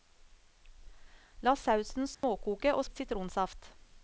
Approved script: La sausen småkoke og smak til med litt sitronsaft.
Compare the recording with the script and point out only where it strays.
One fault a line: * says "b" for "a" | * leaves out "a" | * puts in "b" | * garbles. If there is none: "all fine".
* leaves out "smak til med"